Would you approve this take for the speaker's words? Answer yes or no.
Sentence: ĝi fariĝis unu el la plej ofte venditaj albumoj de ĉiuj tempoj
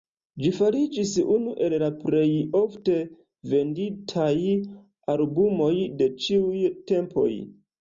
yes